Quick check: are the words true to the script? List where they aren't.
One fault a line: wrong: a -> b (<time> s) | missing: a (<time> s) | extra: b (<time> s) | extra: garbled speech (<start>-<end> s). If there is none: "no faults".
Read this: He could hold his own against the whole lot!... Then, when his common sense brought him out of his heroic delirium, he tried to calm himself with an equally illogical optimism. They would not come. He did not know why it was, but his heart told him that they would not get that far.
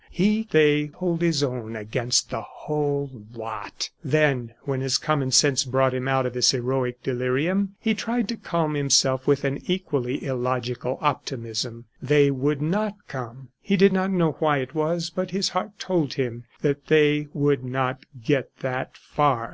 wrong: could -> they (0.5 s)